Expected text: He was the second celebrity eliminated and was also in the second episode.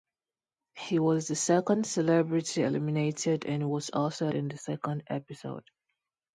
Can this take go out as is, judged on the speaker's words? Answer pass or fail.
pass